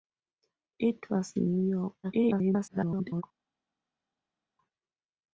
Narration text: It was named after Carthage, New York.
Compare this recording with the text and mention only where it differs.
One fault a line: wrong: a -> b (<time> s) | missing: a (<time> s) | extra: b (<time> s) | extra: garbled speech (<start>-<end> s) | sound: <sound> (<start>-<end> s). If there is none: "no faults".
missing: named after Carthage (1.4 s)
extra: garbled speech (2.0-3.2 s)